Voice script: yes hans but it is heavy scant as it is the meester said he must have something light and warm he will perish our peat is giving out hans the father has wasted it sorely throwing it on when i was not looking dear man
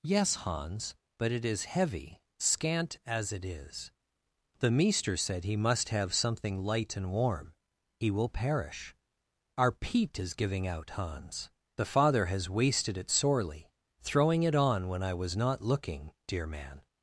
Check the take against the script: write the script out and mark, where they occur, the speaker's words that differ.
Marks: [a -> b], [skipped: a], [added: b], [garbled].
yes hans but it is heavy scant as it is the meester said he must have something light and warm he will perish our peat is giving out hans the father has wasted it sorely throwing it on when i was not looking dear man